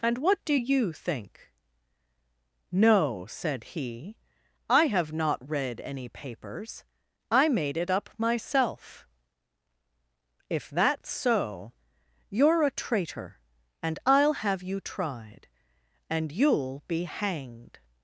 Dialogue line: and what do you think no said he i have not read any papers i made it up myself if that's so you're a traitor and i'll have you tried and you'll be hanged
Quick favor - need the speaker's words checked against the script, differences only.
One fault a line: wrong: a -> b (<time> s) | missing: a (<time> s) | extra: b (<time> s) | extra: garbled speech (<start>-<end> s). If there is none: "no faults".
no faults